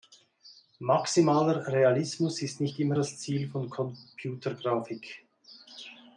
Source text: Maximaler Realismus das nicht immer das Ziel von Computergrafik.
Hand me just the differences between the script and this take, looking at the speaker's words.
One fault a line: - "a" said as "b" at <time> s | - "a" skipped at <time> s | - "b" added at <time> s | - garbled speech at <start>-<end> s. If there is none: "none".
- "das" said as "ist" at 2.4 s